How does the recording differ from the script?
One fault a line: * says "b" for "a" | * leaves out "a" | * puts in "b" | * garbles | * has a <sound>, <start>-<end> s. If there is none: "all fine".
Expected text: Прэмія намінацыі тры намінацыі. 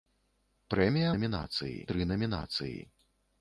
all fine